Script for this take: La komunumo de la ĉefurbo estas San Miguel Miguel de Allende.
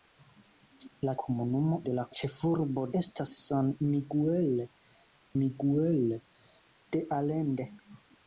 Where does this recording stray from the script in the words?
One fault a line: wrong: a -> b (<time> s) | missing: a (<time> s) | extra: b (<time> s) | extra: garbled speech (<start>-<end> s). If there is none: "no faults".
no faults